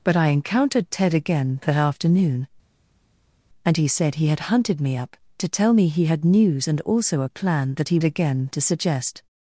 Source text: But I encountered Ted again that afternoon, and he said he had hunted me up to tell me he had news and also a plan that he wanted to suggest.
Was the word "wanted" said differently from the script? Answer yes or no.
yes